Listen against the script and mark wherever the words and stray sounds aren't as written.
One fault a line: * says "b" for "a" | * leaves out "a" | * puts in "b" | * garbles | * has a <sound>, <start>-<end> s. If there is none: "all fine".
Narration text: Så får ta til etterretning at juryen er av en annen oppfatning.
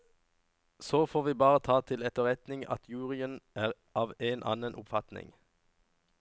* puts in "vi bare"